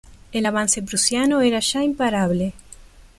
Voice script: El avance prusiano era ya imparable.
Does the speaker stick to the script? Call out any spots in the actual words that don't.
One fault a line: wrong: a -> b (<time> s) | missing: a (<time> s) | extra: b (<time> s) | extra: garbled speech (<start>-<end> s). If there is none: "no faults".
no faults